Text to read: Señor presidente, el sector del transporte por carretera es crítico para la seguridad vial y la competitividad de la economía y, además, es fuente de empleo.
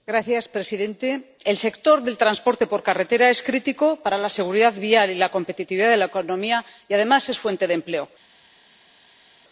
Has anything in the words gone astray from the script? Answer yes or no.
no